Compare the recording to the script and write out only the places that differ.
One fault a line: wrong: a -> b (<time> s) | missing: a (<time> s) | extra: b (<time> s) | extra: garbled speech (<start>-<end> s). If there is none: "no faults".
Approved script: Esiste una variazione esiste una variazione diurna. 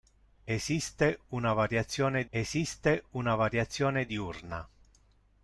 no faults